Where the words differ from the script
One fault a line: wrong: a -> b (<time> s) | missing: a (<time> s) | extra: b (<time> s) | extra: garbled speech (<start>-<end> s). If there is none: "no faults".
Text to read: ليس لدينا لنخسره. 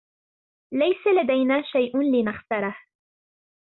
extra: شيء (1.6 s)